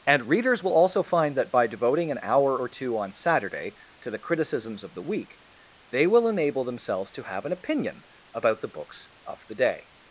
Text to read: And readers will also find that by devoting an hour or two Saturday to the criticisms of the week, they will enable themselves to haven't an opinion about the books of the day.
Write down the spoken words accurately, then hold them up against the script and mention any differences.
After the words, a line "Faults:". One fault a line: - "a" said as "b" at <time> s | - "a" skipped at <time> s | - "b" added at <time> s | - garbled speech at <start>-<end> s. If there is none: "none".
And readers will also find that by devoting an hour or two on Saturday to the criticisms of the week, they will enable themselves to have an opinion about the books of the day.
Faults:
- "on" added at 3.0 s
- "haven't" said as "have" at 7.2 s